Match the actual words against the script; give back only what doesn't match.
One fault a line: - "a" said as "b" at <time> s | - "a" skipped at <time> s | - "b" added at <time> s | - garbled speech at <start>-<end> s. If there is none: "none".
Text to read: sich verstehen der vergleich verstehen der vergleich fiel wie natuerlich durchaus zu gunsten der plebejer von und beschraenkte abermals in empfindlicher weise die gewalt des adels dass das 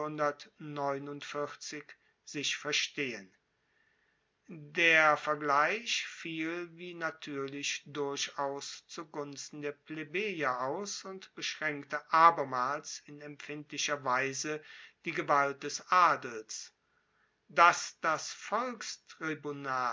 - "verstehen der vergleich" skipped at 6.0 s
- "von" said as "aus" at 10.6 s